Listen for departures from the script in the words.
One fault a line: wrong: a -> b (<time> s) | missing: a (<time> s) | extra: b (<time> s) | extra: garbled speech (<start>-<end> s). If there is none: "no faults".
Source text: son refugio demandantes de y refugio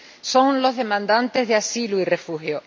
wrong: refugio -> los (0.6 s)
extra: asilo (1.6 s)